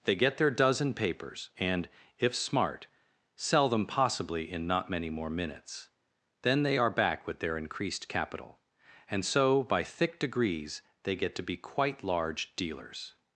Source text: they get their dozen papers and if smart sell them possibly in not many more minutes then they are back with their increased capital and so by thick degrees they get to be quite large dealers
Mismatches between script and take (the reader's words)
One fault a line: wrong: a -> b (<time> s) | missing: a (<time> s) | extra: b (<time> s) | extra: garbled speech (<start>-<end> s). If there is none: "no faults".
no faults